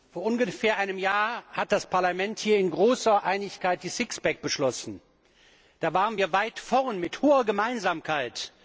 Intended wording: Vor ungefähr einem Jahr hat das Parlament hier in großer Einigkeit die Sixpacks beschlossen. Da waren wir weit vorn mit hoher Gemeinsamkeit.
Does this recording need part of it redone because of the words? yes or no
no